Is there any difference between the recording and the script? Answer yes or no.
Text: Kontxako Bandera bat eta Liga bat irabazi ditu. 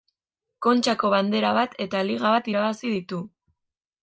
no